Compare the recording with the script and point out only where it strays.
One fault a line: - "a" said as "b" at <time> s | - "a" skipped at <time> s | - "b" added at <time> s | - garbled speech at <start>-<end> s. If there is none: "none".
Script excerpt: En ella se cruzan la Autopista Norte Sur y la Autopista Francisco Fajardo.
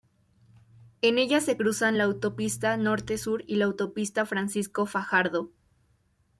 none